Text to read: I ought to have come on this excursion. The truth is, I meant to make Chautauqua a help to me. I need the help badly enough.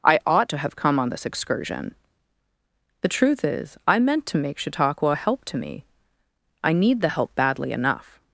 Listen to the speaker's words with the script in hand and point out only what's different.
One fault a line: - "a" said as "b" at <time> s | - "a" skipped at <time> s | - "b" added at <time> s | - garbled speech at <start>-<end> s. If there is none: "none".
none